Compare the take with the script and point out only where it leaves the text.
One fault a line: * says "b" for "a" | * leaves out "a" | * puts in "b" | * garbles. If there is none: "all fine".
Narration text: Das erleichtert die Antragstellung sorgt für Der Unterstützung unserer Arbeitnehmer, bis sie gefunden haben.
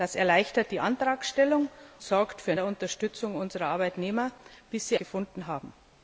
all fine